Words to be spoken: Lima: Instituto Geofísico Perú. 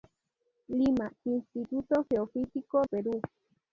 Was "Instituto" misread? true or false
false